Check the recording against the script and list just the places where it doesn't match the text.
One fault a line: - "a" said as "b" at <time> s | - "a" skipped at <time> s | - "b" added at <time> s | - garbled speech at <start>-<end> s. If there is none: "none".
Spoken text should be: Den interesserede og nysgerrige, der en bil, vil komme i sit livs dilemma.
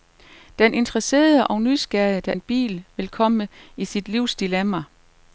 none